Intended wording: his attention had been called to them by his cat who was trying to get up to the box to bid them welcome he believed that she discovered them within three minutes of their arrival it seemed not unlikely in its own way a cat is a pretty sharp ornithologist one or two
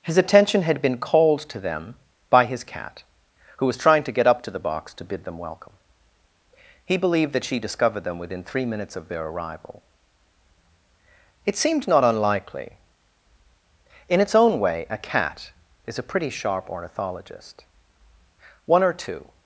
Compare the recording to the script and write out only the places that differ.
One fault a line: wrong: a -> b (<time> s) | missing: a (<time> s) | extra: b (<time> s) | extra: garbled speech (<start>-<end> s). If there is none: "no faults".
no faults